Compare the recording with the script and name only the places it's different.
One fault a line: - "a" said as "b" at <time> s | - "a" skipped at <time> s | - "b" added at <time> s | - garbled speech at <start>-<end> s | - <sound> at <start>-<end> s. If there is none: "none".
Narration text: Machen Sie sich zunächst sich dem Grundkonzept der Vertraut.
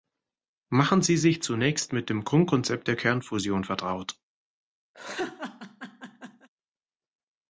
- "sich" said as "mit" at 1.9 s
- "Kernfusion" added at 2.9 s
- laugh at 4.9-6.5 s